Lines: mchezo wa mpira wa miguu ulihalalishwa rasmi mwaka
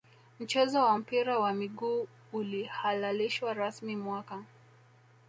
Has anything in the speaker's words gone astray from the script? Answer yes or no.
no